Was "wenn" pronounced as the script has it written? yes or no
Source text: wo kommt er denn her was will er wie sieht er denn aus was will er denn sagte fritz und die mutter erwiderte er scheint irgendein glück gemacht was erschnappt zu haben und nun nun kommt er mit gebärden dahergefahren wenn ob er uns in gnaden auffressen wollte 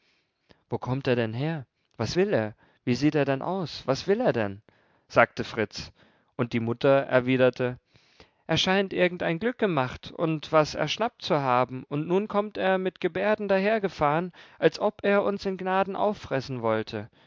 no